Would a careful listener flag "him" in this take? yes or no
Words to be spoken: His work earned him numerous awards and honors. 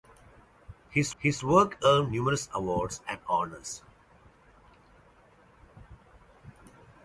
yes